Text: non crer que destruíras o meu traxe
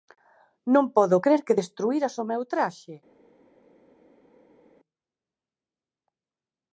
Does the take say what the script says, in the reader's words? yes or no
no